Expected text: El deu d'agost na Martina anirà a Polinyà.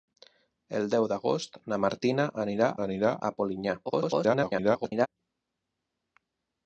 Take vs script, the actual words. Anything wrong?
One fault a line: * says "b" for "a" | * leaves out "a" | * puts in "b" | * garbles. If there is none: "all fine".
* puts in "anirà"
* garbles